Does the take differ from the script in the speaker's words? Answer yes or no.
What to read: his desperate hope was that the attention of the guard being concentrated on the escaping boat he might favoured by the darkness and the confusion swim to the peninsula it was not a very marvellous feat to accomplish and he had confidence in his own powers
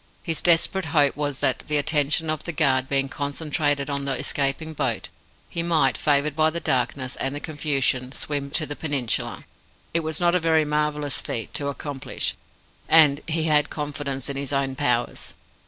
no